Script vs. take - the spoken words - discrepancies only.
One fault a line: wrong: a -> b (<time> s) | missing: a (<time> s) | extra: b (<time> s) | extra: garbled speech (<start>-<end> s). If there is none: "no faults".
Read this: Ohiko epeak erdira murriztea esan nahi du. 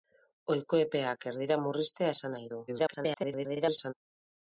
extra: garbled speech (2.7-3.9 s)